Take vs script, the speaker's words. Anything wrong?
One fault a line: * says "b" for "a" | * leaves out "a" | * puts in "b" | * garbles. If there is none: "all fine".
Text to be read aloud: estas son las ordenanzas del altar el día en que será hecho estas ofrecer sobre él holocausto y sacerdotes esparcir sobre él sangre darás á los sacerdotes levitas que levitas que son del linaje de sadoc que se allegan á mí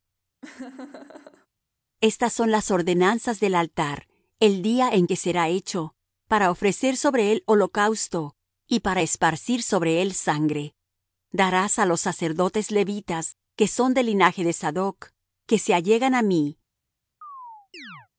* says "para" for "estas"
* says "para" for "sacerdotes"
* leaves out "levitas que"